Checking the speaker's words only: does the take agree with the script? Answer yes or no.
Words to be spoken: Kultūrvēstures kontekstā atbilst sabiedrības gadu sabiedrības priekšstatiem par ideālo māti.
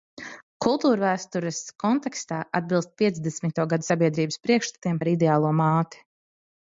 no